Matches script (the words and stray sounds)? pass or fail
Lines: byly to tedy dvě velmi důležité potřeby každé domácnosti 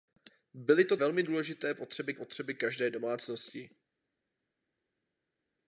fail